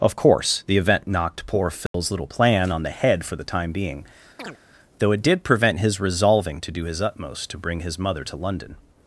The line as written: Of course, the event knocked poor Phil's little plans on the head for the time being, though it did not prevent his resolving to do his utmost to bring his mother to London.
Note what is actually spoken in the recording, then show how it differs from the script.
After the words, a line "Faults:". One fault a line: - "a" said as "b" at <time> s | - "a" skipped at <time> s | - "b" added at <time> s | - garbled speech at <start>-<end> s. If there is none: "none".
Of course, the event knocked poor Phil's little plan on the head for the time being, though it did prevent his resolving to do his utmost to bring his mother to London.
Faults:
- "plans" said as "plan" at 2.2 s
- "not" skipped at 5.4 s